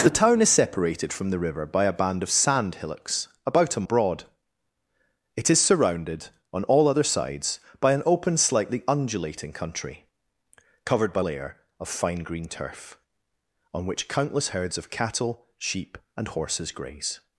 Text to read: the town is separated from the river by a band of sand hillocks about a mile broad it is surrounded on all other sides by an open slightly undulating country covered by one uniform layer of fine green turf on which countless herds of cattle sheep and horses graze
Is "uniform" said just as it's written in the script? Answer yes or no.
no